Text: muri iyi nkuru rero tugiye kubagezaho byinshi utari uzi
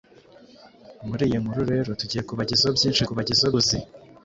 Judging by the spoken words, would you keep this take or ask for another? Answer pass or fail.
fail